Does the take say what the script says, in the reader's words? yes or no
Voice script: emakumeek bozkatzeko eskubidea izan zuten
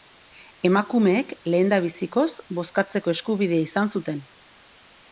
no